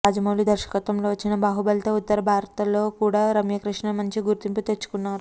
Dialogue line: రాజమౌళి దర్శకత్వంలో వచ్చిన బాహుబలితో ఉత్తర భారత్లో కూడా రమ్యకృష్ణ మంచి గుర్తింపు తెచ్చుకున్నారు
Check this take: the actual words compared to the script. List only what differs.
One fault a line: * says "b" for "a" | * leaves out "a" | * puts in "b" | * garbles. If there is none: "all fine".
all fine